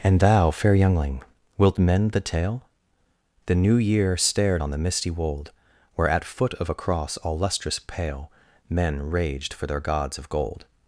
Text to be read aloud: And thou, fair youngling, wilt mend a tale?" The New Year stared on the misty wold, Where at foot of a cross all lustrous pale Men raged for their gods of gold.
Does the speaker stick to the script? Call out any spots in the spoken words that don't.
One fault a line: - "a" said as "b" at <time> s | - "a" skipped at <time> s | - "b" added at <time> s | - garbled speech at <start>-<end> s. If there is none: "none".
- "a" said as "the" at 2.1 s